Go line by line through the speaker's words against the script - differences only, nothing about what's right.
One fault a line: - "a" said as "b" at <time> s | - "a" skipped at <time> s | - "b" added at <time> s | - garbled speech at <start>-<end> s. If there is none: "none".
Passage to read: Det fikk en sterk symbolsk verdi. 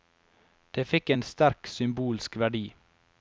none